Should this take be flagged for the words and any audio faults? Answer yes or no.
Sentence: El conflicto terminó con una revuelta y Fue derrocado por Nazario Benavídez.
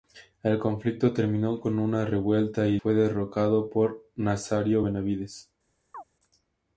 yes